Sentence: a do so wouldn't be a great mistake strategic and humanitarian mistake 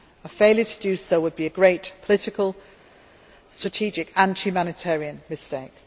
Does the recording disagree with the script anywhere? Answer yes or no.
yes